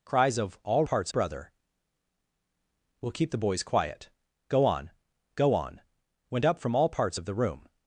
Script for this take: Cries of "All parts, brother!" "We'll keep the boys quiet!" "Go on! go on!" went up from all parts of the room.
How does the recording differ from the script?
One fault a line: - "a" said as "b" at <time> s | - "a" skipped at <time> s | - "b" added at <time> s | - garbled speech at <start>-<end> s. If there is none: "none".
none